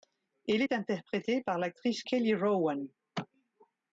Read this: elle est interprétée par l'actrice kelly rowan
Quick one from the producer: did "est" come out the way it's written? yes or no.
yes